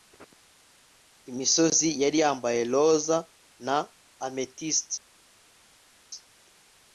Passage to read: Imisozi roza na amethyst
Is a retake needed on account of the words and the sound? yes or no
yes